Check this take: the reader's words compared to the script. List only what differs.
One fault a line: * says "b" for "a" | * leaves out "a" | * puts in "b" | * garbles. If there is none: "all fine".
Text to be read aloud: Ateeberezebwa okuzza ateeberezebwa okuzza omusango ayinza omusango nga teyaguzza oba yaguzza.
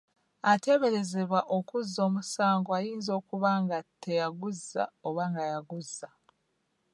* leaves out "ateeberezebwa okuzza"
* says "okuba" for "omusango"
* puts in "nga"